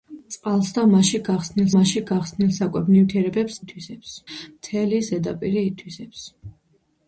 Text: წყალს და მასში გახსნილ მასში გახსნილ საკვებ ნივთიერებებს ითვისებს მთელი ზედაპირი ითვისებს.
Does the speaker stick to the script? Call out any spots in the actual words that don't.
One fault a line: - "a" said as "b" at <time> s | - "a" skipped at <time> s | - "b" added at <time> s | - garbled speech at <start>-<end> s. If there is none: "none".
none